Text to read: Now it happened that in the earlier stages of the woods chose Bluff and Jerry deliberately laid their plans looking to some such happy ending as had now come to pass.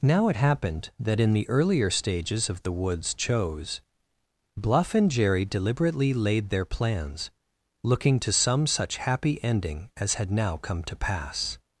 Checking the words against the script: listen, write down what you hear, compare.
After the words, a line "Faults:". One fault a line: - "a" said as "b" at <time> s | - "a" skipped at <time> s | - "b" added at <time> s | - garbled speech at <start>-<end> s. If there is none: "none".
Now it happened that in the earlier stages of the woods chose Bluff and Jerry deliberately laid their plans looking to some such happy ending as had now come to pass.
Faults:
none